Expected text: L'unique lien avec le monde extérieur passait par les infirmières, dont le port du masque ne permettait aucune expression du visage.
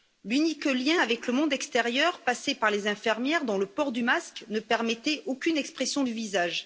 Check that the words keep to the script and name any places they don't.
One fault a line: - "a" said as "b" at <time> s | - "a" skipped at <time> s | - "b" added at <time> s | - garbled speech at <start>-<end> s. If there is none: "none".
none